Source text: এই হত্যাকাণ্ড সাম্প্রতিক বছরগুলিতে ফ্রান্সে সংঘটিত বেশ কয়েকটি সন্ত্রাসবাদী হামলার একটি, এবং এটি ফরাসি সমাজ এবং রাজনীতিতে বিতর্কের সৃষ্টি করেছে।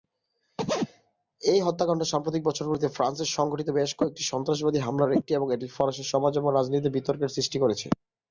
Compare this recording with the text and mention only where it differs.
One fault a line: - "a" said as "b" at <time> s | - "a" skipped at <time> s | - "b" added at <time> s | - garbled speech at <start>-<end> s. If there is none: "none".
none